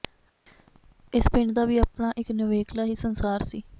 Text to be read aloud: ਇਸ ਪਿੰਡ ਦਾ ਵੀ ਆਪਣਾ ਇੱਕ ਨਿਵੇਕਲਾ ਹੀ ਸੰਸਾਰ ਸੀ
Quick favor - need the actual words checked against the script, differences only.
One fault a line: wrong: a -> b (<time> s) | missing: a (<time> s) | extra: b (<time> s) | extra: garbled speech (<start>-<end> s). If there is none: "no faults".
no faults